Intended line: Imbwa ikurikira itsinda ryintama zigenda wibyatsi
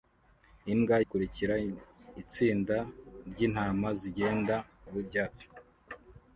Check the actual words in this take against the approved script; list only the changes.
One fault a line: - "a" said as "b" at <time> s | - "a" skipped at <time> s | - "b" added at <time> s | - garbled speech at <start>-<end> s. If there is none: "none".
none